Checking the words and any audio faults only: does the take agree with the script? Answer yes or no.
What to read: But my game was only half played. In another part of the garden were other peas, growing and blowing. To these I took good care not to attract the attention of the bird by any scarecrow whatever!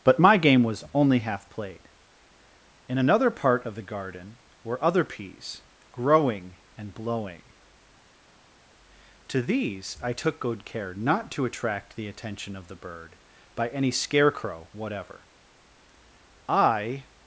no